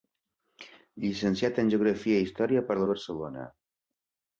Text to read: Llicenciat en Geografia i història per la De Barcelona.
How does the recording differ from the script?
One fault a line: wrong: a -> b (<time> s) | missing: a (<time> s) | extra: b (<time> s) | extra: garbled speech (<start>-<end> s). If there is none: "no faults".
no faults